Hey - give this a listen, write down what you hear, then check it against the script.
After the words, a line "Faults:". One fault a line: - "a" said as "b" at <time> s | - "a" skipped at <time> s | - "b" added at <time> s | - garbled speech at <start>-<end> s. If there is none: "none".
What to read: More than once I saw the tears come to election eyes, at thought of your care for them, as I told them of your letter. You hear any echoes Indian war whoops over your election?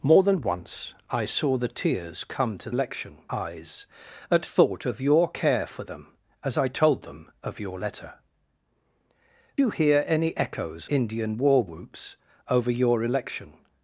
More than once I saw the tears come to election eyes, at thought of your care for them, as I told them of your letter. You hear any echoes Indian war whoops over your election?
Faults:
none